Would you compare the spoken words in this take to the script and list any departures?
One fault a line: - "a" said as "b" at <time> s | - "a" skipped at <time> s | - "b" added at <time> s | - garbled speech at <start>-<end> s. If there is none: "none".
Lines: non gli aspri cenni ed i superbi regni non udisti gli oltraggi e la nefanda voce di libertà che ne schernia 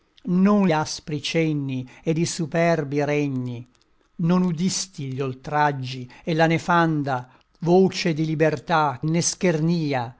- "gli" skipped at 0.7 s
- "che" skipped at 9.0 s